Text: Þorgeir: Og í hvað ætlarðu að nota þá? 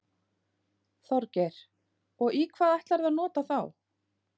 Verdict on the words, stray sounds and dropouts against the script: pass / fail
pass